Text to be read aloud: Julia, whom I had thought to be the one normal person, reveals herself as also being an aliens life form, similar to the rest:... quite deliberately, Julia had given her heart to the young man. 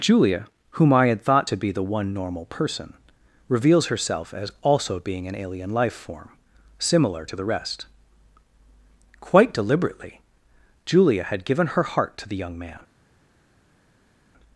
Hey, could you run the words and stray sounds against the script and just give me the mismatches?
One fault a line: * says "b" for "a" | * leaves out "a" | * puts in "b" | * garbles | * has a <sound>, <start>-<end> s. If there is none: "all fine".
* says "alien" for "aliens"